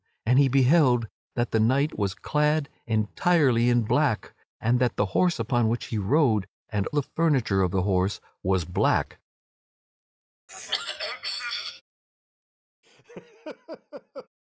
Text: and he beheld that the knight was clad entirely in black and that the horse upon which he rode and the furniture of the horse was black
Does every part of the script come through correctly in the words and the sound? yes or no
no